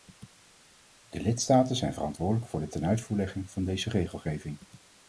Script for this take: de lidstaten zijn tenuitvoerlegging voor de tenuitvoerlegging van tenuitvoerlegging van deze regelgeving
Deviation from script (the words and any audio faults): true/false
true